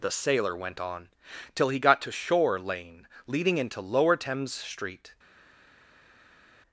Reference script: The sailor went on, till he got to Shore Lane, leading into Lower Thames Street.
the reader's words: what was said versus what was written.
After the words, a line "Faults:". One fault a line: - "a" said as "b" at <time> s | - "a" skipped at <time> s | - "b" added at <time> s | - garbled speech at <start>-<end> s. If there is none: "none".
The sailor went on, till he got to Shore Lane, leading into Lower Thames Street.
Faults:
none